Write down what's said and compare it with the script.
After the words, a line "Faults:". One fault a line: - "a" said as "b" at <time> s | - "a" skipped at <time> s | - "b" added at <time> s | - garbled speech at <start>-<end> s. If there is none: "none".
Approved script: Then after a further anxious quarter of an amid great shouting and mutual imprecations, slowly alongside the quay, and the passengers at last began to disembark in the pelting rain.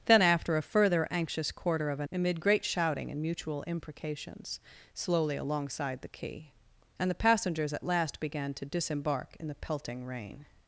Then after a further anxious quarter of an amid great shouting and mutual imprecations, slowly alongside the quay, and the passengers at last began to disembark in the pelting rain.
Faults:
none